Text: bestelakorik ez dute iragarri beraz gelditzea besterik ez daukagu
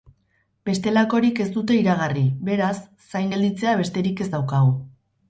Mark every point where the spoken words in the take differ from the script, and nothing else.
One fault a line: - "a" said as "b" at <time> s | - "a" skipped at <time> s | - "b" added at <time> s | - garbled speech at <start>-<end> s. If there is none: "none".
- "zain" added at 3.1 s